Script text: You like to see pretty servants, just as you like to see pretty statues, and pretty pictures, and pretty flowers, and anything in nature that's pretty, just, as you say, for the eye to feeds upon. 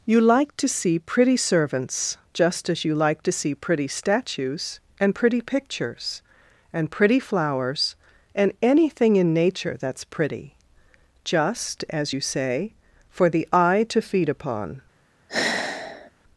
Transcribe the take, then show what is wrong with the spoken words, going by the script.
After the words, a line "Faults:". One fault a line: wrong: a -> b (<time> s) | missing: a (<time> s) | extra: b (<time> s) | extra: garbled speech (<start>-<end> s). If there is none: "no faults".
You like to see pretty servants, just as you like to see pretty statues, and pretty pictures, and pretty flowers, and anything in nature that's pretty, just, as you say, for the eye to feed upon.
Faults:
wrong: feeds -> feed (14.0 s)